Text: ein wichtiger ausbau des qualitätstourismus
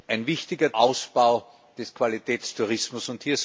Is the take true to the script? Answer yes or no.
yes